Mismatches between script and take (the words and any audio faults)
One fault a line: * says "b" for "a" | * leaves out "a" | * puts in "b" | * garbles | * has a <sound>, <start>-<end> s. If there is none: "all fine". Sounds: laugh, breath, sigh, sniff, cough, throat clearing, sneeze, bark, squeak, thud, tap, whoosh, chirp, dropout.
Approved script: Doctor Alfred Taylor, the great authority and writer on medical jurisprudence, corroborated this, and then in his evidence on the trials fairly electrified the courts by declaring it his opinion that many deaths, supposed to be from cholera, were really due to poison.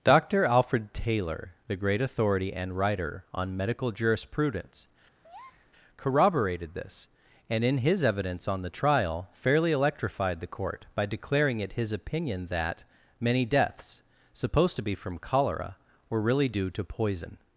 * has a breath, 5.2-5.7 s
* leaves out "then"
* says "trial" for "trials"
* says "court" for "courts"